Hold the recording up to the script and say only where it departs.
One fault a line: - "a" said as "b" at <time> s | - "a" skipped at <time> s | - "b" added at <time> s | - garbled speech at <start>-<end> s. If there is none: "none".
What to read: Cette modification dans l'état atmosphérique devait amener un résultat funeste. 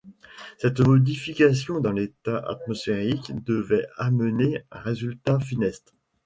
none